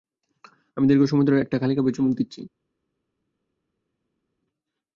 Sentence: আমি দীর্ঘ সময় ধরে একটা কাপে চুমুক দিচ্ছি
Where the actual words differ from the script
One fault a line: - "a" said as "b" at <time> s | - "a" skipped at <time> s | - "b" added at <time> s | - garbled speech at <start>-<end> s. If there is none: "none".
- "খালি" added at 1.6 s